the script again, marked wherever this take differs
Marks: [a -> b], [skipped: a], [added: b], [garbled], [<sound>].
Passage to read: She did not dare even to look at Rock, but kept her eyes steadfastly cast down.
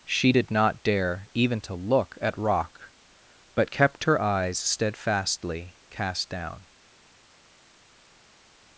She did not dare even to look at Rock, but kept her eyes steadfastly cast down.